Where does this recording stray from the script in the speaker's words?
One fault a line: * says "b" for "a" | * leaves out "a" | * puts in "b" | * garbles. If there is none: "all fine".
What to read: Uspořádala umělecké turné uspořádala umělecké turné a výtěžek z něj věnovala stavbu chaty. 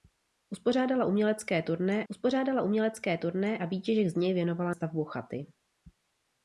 all fine